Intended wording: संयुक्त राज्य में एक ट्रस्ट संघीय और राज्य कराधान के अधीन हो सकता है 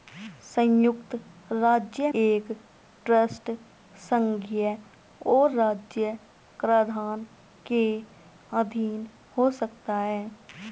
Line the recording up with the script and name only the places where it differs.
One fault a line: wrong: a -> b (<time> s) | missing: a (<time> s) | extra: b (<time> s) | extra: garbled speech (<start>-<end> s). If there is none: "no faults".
missing: में (2.1 s)